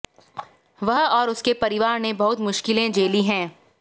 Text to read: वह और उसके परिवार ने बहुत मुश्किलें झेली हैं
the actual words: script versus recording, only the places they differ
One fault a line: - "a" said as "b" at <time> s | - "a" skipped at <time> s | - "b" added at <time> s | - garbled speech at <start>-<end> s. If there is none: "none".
none